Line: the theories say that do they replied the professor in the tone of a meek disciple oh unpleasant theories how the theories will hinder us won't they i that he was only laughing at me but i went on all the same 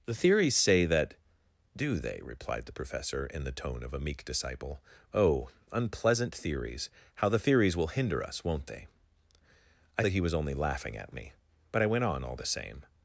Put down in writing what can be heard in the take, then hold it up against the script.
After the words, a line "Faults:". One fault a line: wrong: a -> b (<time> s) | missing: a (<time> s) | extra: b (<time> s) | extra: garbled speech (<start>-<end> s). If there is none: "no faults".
the theories say that do they replied the professor in the tone of a meek disciple oh unpleasant theories how the theories will hinder us won't they i that he was only laughing at me but i went on all the same
Faults:
no faults